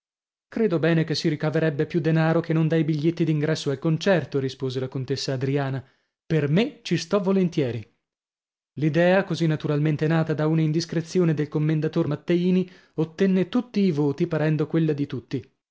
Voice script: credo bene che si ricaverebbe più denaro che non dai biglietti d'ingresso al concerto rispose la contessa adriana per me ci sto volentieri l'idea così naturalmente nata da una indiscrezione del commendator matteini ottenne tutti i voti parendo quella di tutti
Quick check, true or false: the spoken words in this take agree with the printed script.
true